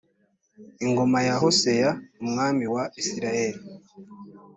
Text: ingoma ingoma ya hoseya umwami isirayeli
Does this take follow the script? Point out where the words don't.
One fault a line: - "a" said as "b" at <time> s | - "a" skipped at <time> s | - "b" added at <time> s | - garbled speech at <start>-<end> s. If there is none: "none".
- "ingoma" skipped at 1.2 s
- "wa" added at 2.7 s